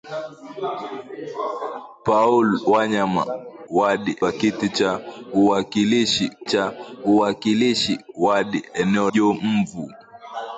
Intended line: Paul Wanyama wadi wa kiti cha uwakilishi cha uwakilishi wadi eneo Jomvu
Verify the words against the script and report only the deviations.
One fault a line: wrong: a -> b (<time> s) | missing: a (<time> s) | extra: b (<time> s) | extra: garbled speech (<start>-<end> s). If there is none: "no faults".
no faults